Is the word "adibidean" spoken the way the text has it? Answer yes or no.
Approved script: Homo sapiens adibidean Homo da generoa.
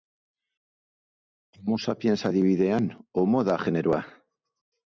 yes